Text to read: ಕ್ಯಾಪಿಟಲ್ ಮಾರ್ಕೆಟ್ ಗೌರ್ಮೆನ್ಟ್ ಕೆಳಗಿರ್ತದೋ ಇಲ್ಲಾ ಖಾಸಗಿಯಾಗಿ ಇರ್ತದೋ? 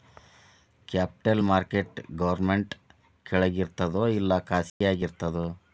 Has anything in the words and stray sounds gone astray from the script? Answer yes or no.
yes